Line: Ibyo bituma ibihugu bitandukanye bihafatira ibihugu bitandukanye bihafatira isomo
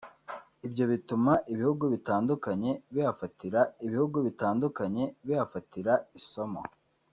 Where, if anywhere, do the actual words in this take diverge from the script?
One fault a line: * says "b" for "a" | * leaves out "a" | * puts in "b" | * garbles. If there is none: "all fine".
all fine